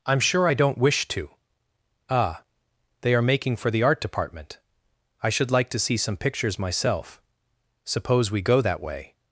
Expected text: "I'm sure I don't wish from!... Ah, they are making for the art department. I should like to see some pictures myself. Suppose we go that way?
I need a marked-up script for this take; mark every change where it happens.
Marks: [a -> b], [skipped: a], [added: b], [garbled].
"I'm sure I don't wish [from!... -> to] Ah, they are making for the art department. I should like to see some pictures myself. Suppose we go that way?